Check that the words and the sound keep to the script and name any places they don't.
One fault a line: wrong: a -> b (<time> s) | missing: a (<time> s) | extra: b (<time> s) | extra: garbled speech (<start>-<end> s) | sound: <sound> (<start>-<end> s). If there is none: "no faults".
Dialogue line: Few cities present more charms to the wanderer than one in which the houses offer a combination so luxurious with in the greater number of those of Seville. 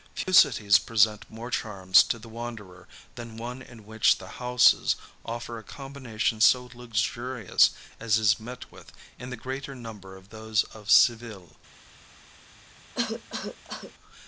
sound: dropout (0.2-0.3 s)
extra: as is met (8.0 s)
sound: cough (12.9-13.9 s)